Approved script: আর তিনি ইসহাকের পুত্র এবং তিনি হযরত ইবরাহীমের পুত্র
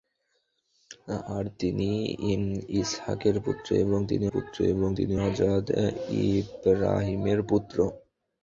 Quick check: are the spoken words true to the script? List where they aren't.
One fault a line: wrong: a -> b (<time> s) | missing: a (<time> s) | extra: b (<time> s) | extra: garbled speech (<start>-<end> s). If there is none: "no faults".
extra: পুত্র এবং তিনি (4.3 s)